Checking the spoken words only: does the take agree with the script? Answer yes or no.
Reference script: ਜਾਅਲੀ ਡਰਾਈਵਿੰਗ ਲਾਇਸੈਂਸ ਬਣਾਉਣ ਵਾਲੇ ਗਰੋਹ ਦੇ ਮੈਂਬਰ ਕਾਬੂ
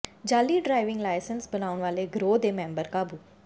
yes